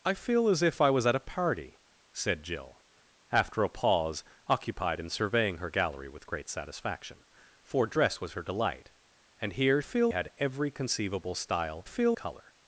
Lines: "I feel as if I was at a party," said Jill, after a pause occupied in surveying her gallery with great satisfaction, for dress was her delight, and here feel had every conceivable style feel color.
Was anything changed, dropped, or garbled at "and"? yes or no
no